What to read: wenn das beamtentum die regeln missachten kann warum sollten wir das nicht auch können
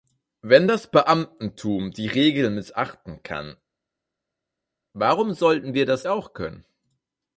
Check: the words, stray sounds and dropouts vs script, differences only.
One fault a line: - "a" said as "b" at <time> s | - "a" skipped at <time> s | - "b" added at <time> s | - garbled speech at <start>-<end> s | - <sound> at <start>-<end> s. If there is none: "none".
- "nicht" skipped at 6.1 s